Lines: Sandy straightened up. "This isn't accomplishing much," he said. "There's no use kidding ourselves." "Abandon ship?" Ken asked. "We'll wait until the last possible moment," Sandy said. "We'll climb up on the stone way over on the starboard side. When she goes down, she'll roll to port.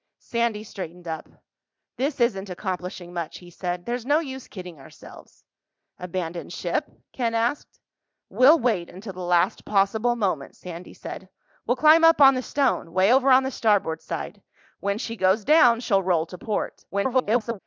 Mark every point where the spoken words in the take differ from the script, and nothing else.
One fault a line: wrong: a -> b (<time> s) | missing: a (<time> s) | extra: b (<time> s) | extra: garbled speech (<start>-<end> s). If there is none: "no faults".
extra: garbled speech (16.9-17.6 s)